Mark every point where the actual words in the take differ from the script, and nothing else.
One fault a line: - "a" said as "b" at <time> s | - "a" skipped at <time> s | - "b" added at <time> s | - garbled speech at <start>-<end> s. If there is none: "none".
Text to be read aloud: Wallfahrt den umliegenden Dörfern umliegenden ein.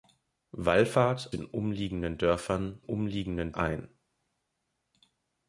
none